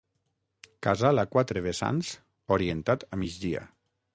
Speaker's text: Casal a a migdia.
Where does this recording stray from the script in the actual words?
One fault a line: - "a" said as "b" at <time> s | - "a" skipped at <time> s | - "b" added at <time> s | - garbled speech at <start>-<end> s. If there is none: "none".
- "quatre vessants orientat" added at 1.4 s